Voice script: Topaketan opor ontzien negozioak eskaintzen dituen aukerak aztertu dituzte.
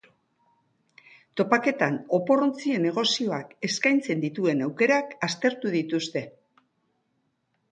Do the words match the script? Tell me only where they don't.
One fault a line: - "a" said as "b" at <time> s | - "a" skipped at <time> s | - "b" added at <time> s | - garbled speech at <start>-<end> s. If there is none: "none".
none